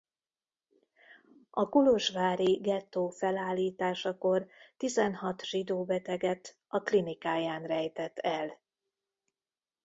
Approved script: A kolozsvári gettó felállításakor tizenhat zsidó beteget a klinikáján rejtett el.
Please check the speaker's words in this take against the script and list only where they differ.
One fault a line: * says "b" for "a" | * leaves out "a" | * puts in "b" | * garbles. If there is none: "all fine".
all fine